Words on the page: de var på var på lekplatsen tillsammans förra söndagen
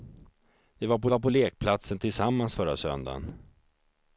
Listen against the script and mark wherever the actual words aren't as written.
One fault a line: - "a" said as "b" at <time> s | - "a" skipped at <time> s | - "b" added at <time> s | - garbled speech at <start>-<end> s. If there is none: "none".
none